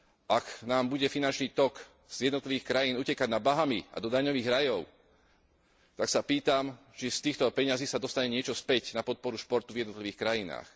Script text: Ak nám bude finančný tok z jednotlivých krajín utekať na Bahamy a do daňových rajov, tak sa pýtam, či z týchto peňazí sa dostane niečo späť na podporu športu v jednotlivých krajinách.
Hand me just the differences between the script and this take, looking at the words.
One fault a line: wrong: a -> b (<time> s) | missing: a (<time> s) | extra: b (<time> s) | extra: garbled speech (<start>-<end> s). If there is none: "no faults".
no faults